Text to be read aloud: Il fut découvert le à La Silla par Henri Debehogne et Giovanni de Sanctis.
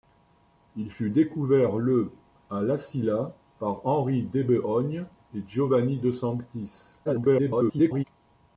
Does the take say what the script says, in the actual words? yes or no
no